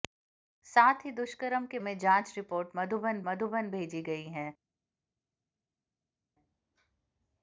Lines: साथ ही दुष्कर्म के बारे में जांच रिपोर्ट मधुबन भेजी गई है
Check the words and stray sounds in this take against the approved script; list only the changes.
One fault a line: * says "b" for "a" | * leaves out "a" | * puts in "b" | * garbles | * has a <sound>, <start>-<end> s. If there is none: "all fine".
* leaves out "बारे"
* puts in "मधुबन"